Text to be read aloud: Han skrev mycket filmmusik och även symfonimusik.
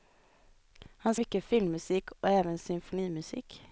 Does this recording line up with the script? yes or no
no